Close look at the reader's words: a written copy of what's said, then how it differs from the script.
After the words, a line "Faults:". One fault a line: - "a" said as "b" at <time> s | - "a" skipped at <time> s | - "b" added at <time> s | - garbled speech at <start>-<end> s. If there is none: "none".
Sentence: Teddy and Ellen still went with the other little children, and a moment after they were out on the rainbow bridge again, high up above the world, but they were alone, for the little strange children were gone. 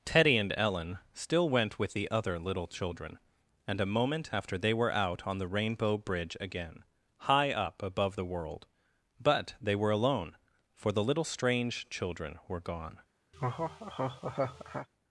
Teddy and Ellen still went with the other little children, and a moment after they were out on the rainbow bridge again, high up above the world, but they were alone, for the little strange children were gone.
Faults:
none